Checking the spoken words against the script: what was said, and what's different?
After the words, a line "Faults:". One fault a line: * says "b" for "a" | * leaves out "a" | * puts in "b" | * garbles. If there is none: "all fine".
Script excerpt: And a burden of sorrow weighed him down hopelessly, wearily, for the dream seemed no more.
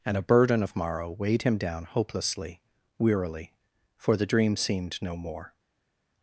And a burden of morrow weighed him down hopelessly, wearily, for the dream seemed no more.
Faults:
* says "morrow" for "sorrow"